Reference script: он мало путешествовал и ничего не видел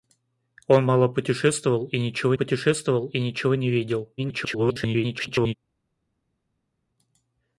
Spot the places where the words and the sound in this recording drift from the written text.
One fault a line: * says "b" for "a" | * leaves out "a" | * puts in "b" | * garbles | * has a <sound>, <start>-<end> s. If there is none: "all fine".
* puts in "путешествовал и ничего"
* garbles